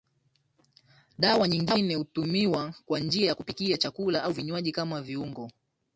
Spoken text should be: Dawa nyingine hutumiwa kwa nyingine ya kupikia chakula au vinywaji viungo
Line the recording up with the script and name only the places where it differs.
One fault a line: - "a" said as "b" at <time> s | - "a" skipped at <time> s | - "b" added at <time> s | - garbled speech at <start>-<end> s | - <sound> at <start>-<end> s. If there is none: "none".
- "nyingine" said as "njia" at 3.0 s
- "kama" added at 4.7 s